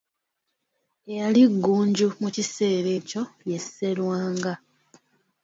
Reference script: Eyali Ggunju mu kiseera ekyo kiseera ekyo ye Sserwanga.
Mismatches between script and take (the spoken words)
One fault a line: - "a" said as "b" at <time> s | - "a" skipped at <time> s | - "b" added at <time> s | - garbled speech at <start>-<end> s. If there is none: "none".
- "kiseera ekyo" skipped at 3.2 s